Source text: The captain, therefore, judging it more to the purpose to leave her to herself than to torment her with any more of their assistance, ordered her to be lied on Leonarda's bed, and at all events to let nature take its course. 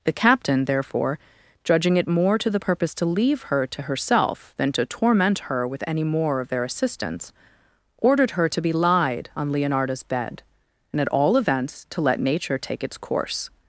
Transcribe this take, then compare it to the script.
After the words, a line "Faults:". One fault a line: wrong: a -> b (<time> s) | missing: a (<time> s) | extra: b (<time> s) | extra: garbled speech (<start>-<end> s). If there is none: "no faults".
The captain, therefore, judging it more to the purpose to leave her to herself than to torment her with any more of their assistance, ordered her to be lied on Leonarda's bed, and at all events to let nature take its course.
Faults:
no faults